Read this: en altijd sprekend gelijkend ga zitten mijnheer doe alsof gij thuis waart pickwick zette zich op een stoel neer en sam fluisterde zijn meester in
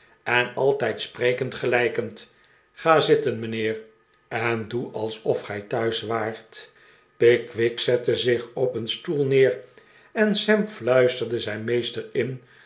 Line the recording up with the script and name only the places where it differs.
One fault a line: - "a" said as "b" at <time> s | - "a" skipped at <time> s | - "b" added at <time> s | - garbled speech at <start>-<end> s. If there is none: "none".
- "en" added at 4.3 s